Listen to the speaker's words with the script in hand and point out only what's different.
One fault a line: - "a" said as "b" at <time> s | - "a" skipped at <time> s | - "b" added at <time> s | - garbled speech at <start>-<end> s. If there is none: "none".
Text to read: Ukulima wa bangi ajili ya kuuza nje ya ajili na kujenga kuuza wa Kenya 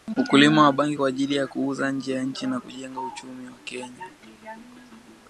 - "kwa" added at 1.0 s
- "ajili" said as "nchi" at 2.2 s
- "kuuza" said as "uchumi" at 3.0 s